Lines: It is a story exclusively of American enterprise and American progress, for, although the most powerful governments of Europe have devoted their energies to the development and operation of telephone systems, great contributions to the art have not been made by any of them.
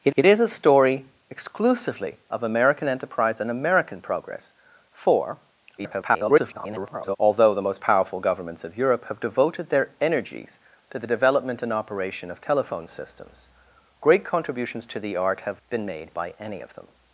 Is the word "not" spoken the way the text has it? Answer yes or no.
no